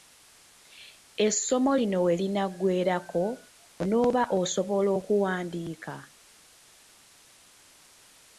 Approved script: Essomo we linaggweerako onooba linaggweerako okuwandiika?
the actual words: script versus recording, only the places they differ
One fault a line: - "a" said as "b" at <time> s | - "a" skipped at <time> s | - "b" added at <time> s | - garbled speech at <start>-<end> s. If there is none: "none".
- "lino" added at 1.8 s
- "linaggweerako" said as "osobola" at 4.4 s